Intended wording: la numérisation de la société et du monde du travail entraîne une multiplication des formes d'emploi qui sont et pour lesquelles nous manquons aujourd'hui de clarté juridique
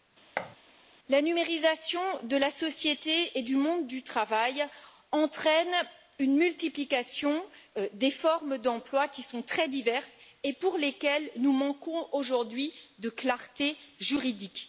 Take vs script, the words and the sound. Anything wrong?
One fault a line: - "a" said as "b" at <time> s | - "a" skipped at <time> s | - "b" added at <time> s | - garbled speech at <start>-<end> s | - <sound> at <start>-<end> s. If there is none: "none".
- thud at 0.4-0.6 s
- "très diverses" added at 9.4 s